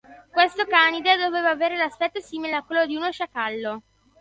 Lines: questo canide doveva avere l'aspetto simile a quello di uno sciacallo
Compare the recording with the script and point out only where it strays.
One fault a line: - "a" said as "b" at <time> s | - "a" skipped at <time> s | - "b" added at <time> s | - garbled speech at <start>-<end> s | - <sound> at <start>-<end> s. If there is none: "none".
none